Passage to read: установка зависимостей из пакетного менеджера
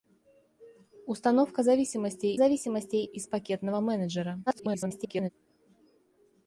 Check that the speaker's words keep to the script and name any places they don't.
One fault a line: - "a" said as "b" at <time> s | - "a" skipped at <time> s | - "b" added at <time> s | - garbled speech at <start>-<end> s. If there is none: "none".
- "зависимостей" added at 2.3 s
- garbled speech at 4.5-5.3 s